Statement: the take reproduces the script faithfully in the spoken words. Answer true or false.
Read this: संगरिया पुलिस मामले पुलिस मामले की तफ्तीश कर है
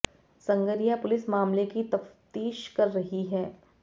false